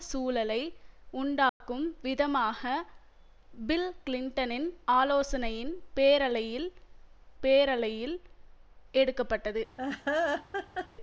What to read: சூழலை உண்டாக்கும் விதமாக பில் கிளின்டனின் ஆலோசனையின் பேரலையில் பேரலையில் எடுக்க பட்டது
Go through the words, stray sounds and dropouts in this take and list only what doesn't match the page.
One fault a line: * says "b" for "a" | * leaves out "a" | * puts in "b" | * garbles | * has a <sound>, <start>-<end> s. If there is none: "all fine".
* has a dropout, 1.5-1.6 s
* has a laugh, 9.8-10.9 s